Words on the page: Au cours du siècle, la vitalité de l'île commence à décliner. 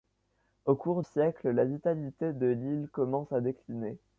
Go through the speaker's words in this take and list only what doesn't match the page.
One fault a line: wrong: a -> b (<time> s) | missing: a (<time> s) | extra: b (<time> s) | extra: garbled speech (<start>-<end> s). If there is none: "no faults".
missing: du (1.0 s)